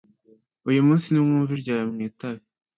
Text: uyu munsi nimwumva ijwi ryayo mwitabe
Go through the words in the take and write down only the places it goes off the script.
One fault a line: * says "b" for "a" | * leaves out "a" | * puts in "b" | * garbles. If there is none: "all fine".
* leaves out "ijwi"